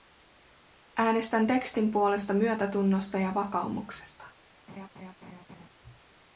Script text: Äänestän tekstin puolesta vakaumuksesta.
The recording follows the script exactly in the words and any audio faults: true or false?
false